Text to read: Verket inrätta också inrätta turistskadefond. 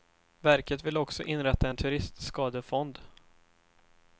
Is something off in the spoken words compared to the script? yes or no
yes